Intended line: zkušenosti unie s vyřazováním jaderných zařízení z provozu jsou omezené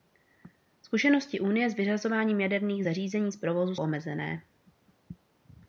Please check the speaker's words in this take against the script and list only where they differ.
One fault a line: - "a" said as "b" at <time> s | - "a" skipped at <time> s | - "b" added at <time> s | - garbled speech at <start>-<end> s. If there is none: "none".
- "jsou" skipped at 3.8 s